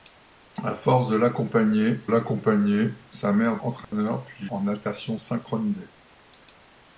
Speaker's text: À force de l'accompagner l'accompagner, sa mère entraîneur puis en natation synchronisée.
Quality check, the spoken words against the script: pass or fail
pass